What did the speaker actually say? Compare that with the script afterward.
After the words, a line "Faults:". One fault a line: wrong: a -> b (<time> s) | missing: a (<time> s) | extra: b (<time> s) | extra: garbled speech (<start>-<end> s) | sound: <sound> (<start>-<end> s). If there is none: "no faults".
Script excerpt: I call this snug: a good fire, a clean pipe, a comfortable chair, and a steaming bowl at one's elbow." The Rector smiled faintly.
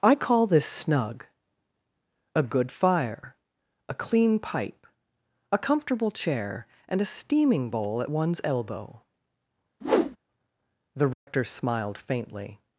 I call this snug: a good fire, a clean pipe, a comfortable chair, and a steaming bowl at one's elbow." The Rector smiled faintly.
Faults:
sound: whoosh (9.8-10.2 s)
sound: dropout (11.1-11.3 s)